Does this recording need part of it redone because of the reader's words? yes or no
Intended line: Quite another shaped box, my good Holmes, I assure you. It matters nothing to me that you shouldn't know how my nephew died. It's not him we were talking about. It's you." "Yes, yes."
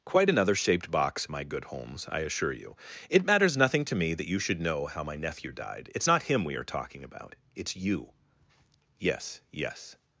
yes